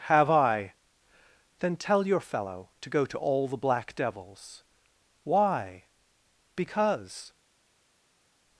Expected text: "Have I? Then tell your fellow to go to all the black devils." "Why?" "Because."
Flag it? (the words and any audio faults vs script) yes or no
no